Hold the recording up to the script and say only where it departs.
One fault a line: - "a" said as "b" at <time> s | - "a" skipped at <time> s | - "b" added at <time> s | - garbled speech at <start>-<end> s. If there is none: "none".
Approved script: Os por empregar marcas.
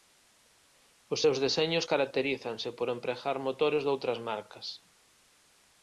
- "seus deseños caracterízanse" added at 1.2 s
- "motores doutras" added at 3.5 s